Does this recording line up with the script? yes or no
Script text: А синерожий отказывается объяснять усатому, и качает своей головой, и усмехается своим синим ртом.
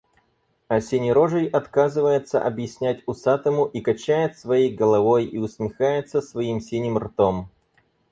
yes